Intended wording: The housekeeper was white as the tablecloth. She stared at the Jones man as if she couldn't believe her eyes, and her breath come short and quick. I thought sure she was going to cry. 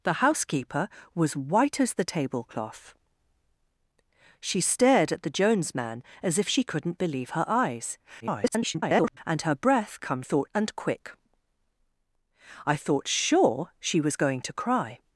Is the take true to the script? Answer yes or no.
no